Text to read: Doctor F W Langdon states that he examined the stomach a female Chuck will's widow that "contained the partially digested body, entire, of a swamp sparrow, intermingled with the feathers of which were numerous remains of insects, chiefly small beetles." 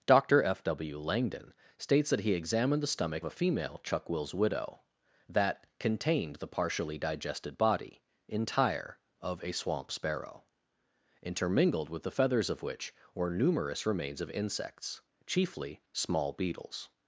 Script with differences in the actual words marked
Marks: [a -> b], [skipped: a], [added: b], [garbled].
Doctor F W Langdon states that he examined the stomach a female Chuck will's widow that "contained the partially digested body, entire, of a swamp sparrow, intermingled with the feathers of which were numerous remains of insects, chiefly small beetles."